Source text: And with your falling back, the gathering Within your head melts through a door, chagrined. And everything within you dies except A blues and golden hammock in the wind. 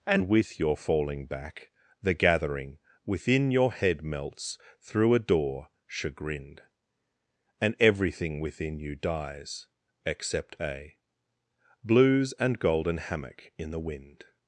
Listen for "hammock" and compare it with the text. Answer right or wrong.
right